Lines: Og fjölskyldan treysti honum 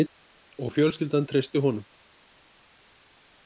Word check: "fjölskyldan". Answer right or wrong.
right